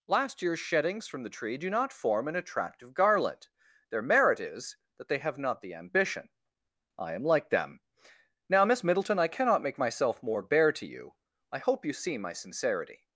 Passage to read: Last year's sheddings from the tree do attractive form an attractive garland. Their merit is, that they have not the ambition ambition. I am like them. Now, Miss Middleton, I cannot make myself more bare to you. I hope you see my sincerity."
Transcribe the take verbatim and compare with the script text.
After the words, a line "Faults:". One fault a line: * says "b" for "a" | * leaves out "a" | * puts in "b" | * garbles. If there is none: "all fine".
Last year's sheddings from the tree do not form an attractive garland. Their merit is, that they have not the ambition. I am like them. Now, Miss Middleton, I cannot make myself more bare to you. I hope you see my sincerity."
Faults:
* says "not" for "attractive"
* leaves out "ambition"